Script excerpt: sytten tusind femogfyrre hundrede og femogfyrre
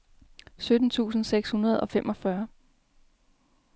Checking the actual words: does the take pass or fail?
fail